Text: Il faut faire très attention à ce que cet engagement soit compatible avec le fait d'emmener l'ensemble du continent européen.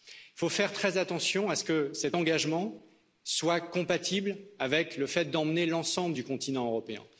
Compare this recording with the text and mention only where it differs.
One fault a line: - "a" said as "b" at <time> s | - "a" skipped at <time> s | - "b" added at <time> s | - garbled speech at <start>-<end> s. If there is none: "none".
none